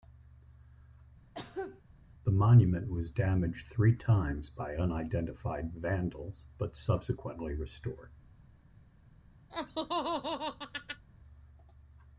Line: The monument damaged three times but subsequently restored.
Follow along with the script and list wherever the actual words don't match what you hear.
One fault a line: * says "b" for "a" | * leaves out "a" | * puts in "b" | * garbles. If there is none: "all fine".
* puts in "was"
* puts in "by unidentified vandals"